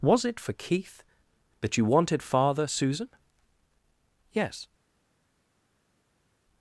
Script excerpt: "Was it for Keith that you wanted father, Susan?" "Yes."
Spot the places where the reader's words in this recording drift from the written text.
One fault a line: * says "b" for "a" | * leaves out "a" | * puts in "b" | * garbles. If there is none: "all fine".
all fine